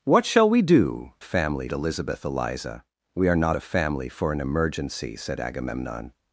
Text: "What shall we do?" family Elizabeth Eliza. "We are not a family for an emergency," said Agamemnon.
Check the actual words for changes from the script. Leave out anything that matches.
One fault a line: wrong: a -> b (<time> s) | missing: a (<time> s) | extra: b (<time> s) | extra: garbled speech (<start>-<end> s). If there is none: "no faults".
no faults